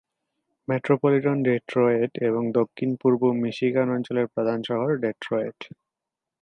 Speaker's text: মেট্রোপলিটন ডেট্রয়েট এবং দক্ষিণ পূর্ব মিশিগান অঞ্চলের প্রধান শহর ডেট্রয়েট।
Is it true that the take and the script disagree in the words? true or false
false